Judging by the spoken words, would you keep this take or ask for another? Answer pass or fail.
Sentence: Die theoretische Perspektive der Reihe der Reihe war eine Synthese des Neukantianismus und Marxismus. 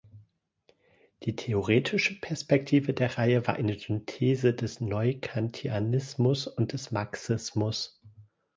fail